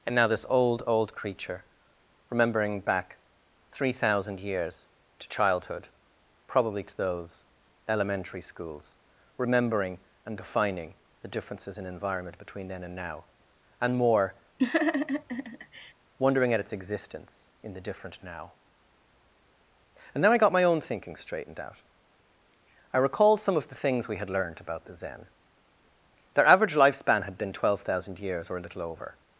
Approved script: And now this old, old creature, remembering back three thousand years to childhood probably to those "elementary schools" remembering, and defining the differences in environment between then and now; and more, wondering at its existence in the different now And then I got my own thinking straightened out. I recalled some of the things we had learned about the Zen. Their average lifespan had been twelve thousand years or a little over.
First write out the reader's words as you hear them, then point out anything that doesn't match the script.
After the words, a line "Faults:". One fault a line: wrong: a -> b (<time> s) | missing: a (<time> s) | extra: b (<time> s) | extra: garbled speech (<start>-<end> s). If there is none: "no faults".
And now this old, old creature, remembering back three thousand years to childhood probably to those "elementary schools" remembering, and defining the differences in environment between then and now; and more, wondering at its existence in the different now And then I got my own thinking straightened out. I recalled some of the things we had learned about the Zen. Their average lifespan had been twelve thousand years or a little over.
Faults:
no faults